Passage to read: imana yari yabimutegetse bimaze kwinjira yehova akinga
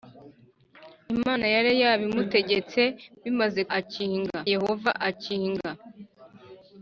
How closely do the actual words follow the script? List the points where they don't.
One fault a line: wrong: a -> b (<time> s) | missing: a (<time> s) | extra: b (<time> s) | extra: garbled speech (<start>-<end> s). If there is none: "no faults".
wrong: kwinjira -> akinga (3.8 s)